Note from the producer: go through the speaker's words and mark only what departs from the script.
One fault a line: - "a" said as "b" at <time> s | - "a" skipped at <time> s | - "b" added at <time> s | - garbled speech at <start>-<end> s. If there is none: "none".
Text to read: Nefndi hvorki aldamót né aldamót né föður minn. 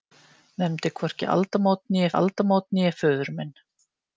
none